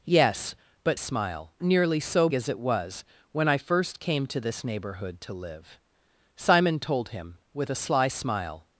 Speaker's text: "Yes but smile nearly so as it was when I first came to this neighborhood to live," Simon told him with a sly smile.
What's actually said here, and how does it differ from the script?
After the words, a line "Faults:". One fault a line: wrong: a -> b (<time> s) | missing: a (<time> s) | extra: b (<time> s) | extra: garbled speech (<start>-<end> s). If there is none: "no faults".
"Yes but smile nearly so as it was when I first came to this neighborhood to live," Simon told him with a sly smile.
Faults:
no faults